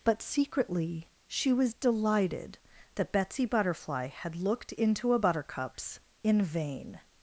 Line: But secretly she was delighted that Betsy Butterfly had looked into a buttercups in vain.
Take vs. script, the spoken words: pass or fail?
pass